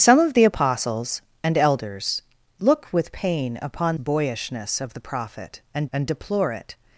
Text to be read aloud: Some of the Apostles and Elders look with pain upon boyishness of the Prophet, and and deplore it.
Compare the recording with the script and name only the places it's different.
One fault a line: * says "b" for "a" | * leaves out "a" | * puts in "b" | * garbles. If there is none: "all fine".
all fine